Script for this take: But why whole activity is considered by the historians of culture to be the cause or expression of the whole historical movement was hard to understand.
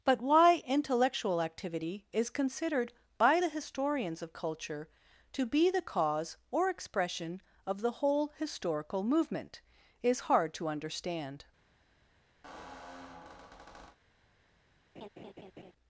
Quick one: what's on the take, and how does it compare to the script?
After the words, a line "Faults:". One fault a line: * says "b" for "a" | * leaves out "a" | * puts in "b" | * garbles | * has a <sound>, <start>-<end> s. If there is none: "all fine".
But why intellectual activity is considered by the historians of culture to be the cause or expression of the whole historical movement is hard to understand.
Faults:
* says "intellectual" for "whole"
* says "is" for "was"
* has a squeak, 12.4-14.0 s
* has a laugh, 15.0-15.7 s